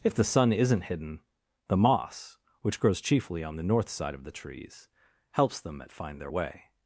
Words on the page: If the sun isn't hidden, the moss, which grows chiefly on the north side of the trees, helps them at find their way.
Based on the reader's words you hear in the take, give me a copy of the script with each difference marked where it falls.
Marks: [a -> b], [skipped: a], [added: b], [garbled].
If the sun isn't hidden, the moss, which grows chiefly on the north side of the trees, helps them at find their way.